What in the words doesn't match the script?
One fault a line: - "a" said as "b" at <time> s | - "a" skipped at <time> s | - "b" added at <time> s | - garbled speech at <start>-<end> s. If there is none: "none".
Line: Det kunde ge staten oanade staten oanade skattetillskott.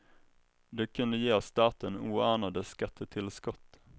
- "staten oanade" skipped at 2.6 s